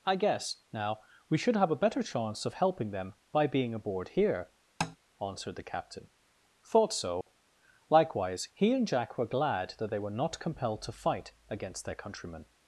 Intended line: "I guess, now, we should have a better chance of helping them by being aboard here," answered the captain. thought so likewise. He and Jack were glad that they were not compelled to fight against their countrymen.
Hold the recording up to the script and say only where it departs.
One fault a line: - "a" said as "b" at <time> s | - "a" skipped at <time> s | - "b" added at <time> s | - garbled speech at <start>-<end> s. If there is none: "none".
none